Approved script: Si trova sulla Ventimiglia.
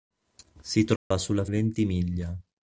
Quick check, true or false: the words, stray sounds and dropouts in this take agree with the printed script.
false